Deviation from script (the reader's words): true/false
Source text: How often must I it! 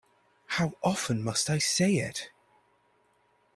true